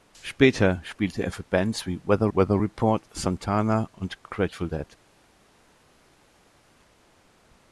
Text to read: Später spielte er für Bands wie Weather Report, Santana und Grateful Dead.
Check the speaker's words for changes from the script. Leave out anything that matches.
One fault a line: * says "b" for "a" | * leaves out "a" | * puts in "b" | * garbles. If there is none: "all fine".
* puts in "Weather"